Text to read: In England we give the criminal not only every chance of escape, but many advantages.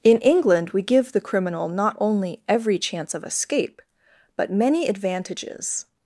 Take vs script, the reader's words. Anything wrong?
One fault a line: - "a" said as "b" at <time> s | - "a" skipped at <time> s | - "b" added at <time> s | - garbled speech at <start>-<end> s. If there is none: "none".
none